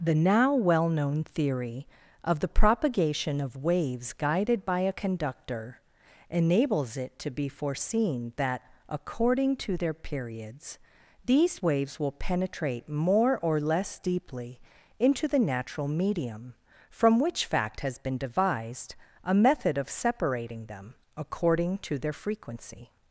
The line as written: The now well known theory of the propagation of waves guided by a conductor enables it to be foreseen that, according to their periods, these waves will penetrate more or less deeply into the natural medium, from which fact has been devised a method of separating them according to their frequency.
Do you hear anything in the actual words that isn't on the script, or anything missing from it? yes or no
no